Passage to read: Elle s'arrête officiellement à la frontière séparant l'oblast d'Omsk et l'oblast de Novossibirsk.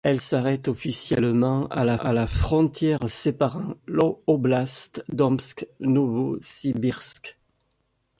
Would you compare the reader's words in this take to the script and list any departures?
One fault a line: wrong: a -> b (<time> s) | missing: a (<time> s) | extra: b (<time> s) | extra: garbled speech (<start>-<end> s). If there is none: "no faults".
extra: à la (2.0 s)
missing: et l'oblast de (5.7 s)